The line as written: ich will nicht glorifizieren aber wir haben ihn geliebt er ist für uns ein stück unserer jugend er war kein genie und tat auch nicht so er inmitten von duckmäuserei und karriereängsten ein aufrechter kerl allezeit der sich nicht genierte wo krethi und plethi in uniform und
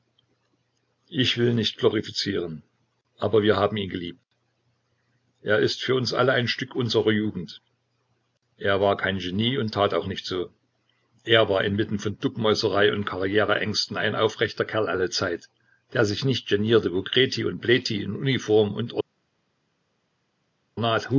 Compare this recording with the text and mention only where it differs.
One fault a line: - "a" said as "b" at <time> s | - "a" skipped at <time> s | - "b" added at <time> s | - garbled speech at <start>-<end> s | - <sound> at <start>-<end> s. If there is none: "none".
- "alle" added at 6.1 s
- "war" added at 11.5 s